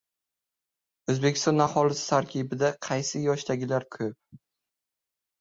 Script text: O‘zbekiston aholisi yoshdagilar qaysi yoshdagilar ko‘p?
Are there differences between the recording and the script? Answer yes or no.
yes